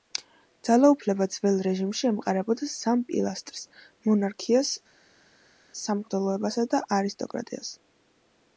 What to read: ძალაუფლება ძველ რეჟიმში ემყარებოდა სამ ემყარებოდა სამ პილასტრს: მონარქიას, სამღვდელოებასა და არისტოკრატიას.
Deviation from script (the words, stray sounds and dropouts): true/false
true